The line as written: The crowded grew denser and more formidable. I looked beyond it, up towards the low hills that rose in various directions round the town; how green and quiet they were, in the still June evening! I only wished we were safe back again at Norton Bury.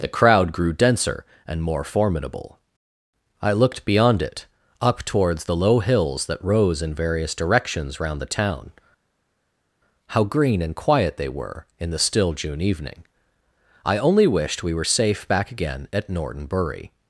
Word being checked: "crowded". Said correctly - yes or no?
no